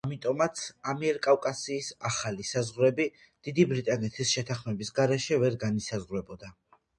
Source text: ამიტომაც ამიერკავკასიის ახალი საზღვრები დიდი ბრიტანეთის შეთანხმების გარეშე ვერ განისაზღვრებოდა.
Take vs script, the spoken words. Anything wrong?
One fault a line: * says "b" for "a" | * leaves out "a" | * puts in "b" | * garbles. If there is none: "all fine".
all fine